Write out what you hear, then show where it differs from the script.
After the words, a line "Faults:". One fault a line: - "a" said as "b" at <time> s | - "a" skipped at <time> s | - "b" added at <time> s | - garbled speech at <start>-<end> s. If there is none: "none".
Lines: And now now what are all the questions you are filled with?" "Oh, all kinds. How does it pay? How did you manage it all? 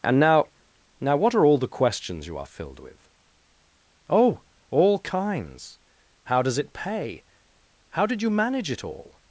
And now now what are all the questions you are filled with?" "Oh, all kinds. How does it pay? How did you manage it all?
Faults:
none